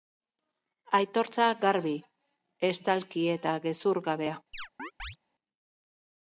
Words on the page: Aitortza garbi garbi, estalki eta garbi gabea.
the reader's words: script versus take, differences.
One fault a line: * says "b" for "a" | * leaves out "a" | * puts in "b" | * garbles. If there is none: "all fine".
* leaves out "garbi"
* says "gezur" for "garbi"